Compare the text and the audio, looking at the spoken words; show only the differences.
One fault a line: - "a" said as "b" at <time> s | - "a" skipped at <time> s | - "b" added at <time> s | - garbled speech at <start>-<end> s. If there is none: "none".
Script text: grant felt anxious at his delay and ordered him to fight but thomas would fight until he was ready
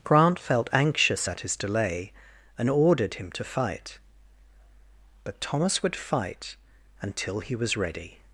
none